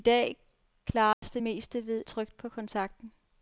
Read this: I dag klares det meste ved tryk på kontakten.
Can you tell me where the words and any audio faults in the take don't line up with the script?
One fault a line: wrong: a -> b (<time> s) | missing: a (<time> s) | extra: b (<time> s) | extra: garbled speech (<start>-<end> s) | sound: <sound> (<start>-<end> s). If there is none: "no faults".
sound: dropout (1.1-1.2 s)